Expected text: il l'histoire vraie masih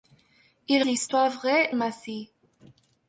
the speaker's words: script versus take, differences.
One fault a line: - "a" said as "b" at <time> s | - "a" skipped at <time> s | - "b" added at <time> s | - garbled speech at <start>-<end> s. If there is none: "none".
none